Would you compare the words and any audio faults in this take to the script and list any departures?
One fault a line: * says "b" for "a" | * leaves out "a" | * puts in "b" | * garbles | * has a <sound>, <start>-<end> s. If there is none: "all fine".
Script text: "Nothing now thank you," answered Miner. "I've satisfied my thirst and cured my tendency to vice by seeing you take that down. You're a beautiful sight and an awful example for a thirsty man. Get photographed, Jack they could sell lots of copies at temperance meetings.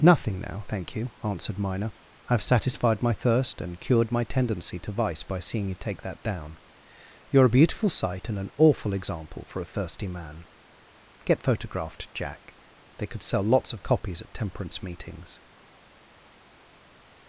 all fine